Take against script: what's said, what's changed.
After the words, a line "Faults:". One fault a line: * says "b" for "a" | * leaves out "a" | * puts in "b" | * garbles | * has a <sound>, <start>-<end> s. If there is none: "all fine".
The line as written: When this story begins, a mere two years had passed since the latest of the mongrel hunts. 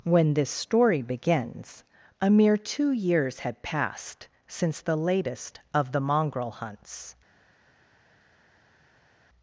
When this story begins, a mere two years had passed since the latest of the mongrel hunts.
Faults:
all fine